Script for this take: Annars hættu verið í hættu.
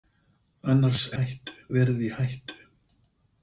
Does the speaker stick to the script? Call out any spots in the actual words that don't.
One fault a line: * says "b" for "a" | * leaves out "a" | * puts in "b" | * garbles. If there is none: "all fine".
all fine